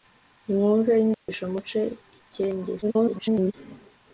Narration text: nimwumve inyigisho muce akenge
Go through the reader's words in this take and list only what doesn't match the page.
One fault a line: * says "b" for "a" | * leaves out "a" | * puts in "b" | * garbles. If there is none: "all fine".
* garbles